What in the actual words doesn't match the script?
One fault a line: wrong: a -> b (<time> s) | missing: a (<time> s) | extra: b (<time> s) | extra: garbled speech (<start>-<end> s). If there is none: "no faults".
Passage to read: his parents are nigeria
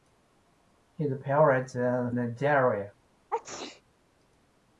no faults